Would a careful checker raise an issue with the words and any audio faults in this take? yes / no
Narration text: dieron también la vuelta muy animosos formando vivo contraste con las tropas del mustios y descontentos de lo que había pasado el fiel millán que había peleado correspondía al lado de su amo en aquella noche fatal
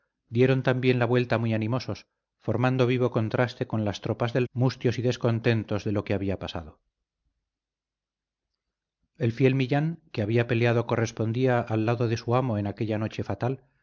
no